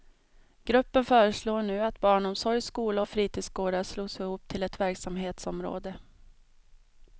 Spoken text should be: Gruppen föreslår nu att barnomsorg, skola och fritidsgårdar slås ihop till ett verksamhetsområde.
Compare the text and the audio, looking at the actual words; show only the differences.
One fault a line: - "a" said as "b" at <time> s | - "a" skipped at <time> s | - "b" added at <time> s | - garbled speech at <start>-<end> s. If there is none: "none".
none